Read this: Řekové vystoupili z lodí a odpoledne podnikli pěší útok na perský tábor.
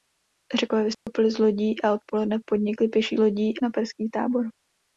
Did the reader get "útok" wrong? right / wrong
wrong